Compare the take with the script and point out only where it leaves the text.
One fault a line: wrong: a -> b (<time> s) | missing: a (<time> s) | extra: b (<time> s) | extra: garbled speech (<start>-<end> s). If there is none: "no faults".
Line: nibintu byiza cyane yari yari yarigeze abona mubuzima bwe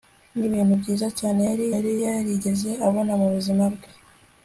no faults